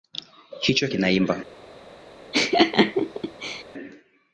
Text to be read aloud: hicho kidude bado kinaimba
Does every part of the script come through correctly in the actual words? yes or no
no